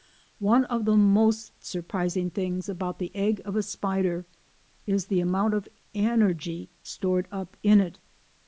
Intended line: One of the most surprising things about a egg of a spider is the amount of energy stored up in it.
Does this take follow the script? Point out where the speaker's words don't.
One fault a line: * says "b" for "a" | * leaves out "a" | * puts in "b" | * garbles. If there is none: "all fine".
* says "the" for "a"